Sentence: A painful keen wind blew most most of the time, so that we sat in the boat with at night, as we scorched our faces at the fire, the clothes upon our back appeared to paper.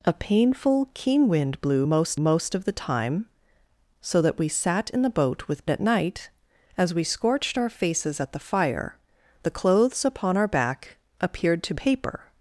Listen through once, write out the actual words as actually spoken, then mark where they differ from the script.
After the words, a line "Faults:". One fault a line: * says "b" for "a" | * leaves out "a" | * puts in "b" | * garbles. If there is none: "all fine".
A painful keen wind blew most most of the time, so that we sat in the boat with at night, as we scorched our faces at the fire, the clothes upon our back appeared to paper.
Faults:
all fine